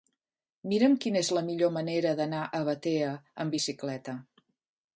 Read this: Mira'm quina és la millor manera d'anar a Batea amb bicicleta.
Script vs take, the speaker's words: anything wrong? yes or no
no